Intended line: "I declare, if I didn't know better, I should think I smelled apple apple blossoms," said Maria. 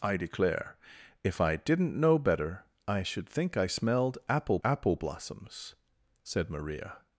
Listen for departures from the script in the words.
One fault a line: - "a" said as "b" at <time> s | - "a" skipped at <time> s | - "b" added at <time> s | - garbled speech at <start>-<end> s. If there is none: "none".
none